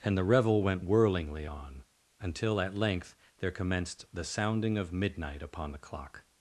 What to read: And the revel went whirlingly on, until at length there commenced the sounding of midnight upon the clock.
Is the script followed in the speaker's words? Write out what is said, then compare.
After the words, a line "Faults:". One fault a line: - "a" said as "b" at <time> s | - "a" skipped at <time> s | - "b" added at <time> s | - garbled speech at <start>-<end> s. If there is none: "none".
And the revel went whirlingly on, until at length there commenced the sounding of midnight upon the clock.
Faults:
none